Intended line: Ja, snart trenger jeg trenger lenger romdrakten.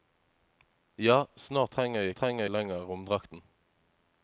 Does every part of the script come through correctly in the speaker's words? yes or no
yes